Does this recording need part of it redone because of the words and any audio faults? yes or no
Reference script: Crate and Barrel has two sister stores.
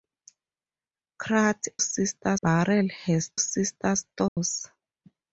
yes